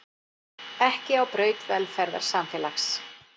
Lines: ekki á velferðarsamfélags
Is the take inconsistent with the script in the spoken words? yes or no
yes